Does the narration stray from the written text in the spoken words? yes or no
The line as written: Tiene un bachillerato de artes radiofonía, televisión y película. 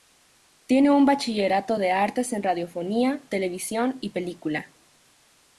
yes